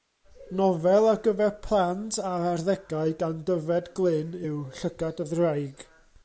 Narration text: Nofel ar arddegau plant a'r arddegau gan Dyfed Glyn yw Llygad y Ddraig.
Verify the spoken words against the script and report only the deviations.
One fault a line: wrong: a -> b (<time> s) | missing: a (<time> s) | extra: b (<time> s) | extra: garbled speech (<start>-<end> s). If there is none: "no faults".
wrong: arddegau -> gyfer (1.3 s)